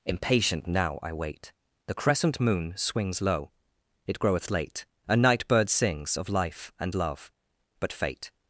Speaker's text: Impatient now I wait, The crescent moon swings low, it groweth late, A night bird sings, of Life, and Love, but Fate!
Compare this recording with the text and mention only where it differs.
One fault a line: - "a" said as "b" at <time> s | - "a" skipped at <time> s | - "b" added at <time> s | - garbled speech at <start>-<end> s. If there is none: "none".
none